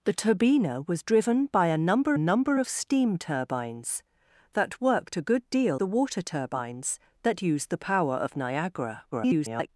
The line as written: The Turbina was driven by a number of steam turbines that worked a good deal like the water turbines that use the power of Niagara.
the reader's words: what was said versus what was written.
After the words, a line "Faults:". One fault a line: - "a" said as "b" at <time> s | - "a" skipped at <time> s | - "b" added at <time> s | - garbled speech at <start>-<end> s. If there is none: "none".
The Turbina was driven by a number number of steam turbines that worked a good deal the water turbines that use the power of Niagara. [garbled]
Faults:
- "number" added at 2.2 s
- "like" skipped at 5.8 s
- garbled speech at 9.1-9.7 s